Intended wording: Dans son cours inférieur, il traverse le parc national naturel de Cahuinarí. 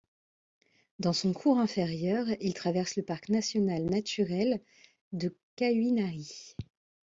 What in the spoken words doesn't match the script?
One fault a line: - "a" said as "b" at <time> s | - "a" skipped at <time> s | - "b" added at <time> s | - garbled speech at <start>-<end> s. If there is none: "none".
none